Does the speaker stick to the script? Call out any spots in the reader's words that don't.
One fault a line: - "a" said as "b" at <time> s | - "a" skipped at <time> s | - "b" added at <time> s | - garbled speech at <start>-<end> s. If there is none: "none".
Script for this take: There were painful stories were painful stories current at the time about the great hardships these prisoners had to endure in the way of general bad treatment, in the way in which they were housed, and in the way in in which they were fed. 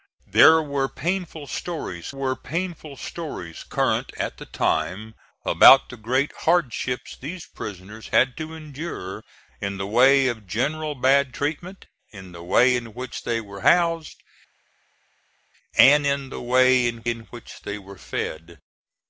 none